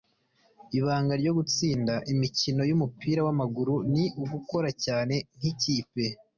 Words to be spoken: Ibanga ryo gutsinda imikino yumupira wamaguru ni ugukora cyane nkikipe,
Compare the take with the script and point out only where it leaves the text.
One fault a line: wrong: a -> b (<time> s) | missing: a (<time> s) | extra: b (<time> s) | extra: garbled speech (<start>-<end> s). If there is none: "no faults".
no faults